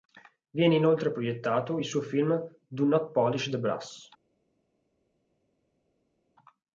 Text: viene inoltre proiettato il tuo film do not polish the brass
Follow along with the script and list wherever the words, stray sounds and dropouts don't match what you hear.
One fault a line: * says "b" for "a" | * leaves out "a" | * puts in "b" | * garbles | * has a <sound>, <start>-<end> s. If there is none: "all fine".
* says "suo" for "tuo"